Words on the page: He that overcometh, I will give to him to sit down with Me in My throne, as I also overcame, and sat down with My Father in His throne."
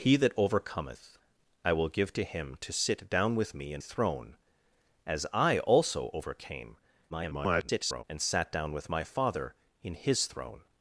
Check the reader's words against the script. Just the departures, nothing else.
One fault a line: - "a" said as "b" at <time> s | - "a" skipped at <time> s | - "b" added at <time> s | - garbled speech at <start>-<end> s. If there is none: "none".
- "My" skipped at 3.8 s
- garbled speech at 7.1-8.0 s